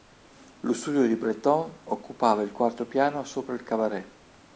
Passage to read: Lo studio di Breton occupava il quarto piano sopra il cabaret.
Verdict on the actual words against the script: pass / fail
pass